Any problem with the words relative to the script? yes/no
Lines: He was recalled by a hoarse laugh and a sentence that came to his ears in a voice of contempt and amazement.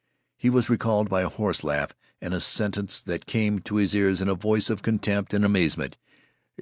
no